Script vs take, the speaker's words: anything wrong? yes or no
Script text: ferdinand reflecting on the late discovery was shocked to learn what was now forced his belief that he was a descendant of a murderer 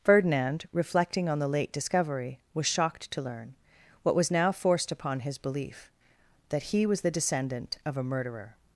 yes